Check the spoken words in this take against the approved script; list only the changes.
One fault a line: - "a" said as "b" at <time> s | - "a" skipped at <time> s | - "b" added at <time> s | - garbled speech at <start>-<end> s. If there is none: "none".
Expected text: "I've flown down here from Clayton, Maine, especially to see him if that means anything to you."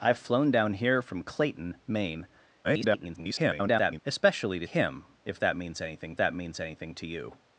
- garbled speech at 2.6-4.0 s
- "see" skipped at 4.7 s
- "that means anything" added at 6.2 s